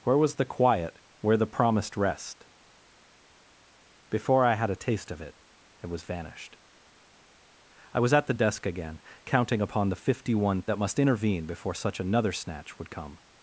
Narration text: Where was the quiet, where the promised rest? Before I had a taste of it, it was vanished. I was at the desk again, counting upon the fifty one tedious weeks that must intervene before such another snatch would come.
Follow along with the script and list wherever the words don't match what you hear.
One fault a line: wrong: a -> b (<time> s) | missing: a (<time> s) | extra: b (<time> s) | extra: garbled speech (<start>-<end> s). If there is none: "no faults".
missing: tedious weeks (10.6 s)